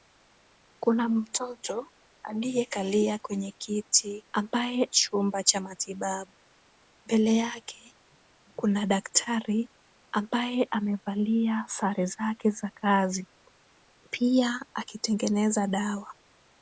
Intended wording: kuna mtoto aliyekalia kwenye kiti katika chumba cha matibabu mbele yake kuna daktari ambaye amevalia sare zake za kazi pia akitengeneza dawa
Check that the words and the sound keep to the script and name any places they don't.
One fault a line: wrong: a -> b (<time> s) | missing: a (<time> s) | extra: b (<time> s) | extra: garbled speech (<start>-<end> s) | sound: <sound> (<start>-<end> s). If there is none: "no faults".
wrong: katika -> ambaye (4.3 s)